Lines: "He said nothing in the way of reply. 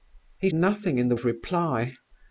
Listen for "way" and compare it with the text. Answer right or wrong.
wrong